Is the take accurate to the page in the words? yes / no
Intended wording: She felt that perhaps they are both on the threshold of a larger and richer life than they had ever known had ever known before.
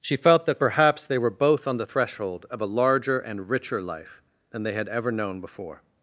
no